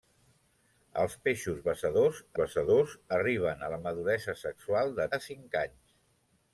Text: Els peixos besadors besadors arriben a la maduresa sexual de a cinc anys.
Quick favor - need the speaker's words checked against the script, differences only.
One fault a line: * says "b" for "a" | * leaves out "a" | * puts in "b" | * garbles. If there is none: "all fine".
all fine